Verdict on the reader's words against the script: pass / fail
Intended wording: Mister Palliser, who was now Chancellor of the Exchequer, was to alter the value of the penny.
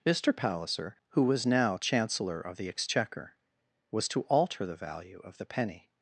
pass